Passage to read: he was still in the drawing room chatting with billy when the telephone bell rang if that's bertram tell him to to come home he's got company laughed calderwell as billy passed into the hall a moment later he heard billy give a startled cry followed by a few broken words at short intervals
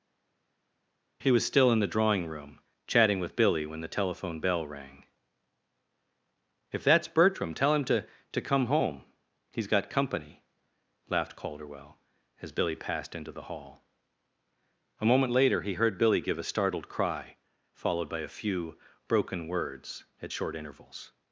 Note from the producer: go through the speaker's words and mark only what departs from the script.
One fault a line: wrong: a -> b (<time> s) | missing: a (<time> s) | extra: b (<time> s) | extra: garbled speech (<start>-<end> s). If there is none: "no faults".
no faults